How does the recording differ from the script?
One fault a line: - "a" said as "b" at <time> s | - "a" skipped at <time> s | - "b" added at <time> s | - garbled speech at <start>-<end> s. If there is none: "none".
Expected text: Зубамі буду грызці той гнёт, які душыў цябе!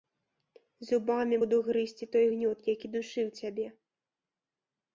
none